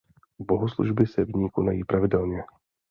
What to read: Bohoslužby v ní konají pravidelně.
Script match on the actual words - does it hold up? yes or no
no